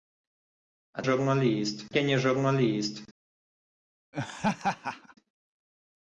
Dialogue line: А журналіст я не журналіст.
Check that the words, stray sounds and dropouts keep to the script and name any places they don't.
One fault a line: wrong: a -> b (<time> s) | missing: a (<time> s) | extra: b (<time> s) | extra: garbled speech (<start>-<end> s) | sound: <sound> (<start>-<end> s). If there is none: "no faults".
sound: laugh (4.1-5.1 s)